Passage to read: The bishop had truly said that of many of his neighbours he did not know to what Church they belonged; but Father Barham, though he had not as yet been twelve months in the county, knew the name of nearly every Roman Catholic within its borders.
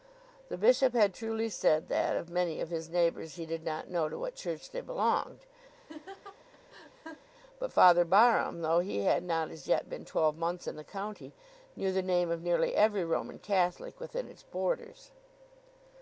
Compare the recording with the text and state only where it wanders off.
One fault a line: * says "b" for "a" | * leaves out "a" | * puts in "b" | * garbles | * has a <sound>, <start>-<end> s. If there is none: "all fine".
* has a laugh, 5.7-7.3 s